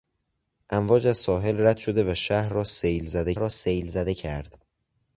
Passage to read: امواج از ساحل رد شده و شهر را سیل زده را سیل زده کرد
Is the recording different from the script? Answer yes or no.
no